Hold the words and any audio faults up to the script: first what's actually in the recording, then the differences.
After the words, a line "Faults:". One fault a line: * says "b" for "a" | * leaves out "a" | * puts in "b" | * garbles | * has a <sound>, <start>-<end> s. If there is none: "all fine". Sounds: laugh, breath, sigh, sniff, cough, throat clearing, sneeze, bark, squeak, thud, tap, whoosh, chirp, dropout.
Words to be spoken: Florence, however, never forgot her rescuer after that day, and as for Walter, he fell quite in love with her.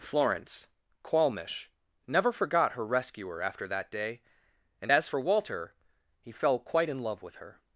Florence, qualmish, never forgot her rescuer after that day, and as for Walter, he fell quite in love with her.
Faults:
* says "qualmish" for "however"